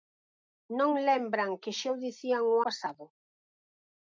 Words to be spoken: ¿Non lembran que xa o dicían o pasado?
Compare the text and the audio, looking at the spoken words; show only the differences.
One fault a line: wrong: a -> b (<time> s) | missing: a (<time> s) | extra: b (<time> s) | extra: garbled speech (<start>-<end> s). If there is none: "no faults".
no faults